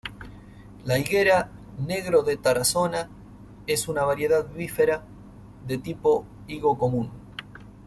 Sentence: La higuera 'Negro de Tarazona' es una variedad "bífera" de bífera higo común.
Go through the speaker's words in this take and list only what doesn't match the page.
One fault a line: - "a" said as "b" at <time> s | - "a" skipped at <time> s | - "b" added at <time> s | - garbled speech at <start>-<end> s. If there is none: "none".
- "bífera" said as "tipo" at 5.8 s